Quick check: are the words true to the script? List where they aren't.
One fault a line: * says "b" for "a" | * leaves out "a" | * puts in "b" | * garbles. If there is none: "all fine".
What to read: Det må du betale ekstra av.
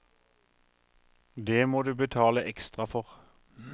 * says "for" for "av"